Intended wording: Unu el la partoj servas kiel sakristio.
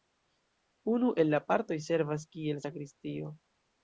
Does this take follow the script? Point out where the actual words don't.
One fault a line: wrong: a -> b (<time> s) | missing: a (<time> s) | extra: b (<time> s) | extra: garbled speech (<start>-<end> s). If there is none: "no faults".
no faults